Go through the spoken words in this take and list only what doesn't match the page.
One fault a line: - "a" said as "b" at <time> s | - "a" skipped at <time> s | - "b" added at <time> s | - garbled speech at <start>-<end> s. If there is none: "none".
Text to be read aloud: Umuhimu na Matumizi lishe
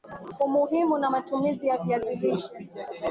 - "ya Viazi" added at 1.7 s